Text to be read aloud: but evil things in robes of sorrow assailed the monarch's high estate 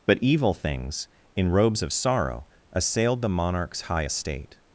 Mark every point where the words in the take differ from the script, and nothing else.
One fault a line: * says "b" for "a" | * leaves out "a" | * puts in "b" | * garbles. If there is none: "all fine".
all fine